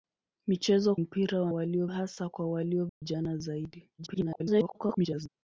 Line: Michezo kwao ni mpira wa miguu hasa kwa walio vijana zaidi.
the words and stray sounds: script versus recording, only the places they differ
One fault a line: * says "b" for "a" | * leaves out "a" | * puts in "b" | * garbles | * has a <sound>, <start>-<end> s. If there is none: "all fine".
* leaves out "kwao ni"
* says "walio" for "miguu"
* has a dropout, 2.9-3.0 s
* garbles